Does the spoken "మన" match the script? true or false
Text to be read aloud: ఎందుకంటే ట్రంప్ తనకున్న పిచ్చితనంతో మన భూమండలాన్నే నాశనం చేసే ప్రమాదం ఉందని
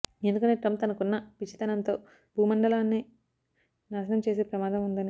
false